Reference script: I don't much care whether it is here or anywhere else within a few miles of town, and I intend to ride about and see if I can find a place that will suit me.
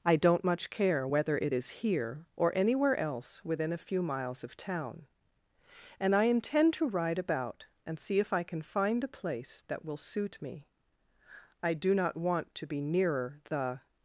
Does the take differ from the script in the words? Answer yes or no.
yes